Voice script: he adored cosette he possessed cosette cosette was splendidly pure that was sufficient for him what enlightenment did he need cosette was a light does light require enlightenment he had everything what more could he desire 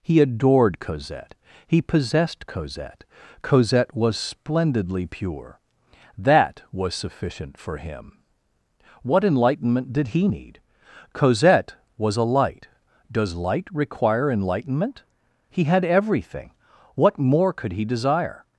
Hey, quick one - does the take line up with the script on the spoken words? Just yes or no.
yes